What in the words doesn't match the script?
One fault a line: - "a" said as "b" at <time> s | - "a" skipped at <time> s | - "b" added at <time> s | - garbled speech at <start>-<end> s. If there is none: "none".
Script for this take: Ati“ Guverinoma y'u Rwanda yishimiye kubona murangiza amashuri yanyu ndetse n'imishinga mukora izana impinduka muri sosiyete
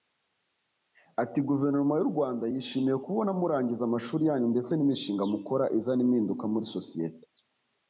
none